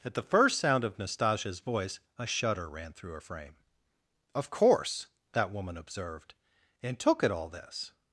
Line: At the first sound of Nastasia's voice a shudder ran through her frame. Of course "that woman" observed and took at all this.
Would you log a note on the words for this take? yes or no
no